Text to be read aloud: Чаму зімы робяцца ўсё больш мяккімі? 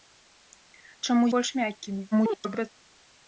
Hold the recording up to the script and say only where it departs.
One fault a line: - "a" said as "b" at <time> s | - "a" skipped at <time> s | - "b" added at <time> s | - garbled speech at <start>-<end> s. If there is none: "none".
- "зімы робяцца ўсё" skipped at 1.3 s
- garbled speech at 2.1-2.7 s